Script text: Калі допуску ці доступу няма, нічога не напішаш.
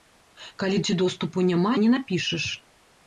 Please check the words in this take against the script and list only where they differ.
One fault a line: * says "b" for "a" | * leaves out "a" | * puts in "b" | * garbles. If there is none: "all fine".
* leaves out "допуску"
* leaves out "нічога"